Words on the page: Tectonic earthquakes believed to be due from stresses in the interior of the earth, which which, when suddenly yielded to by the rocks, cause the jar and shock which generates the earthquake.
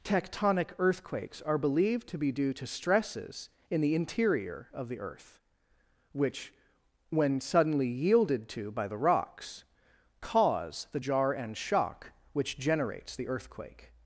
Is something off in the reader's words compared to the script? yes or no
yes